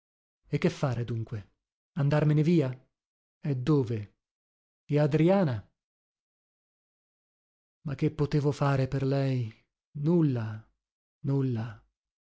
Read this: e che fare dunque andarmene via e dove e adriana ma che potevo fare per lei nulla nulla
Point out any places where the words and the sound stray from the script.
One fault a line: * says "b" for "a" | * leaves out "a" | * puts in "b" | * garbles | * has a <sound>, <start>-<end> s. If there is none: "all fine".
all fine